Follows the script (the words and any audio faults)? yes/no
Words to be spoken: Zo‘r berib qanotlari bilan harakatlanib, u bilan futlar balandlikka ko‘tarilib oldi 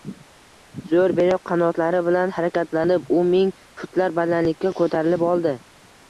no